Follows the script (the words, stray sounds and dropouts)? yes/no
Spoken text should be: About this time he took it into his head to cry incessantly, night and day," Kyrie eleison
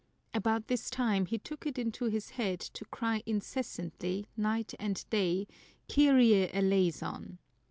yes